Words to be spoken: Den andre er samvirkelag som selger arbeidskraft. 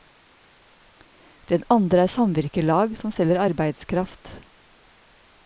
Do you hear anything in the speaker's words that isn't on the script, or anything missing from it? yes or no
no